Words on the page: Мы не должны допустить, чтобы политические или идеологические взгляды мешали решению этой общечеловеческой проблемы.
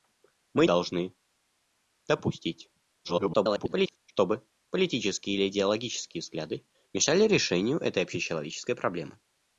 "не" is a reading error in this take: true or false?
true